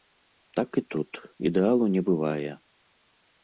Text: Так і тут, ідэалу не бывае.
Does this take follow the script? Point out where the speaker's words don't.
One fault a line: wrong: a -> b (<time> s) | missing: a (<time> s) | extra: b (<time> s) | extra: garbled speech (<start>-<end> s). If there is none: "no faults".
no faults